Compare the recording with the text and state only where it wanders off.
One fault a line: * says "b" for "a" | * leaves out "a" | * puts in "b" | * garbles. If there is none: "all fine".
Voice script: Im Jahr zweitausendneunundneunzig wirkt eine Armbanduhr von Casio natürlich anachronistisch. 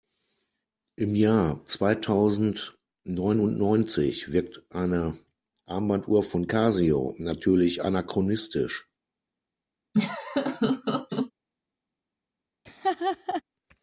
all fine